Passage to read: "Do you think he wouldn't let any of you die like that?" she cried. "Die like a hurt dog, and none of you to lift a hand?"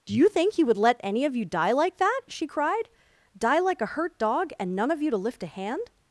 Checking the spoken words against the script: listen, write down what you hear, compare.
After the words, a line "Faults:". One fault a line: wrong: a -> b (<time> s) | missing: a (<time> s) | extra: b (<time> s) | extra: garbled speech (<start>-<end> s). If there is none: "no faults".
"Do you think he would let any of you die like that?" she cried. "Die like a hurt dog, and none of you to lift a hand?"
Faults:
wrong: wouldn't -> would (0.6 s)